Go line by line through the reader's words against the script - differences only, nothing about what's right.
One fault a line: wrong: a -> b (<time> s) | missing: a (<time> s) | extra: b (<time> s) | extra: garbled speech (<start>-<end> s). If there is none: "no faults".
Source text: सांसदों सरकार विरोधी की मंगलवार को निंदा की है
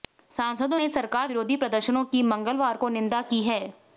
extra: ने (0.8 s)
extra: प्रदर्शनों (1.6 s)